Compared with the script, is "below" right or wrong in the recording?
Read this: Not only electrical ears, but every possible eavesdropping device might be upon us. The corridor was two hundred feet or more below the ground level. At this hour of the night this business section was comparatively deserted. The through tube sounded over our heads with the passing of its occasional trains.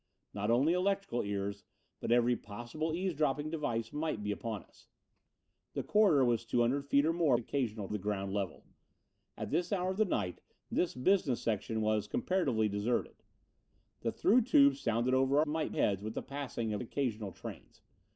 wrong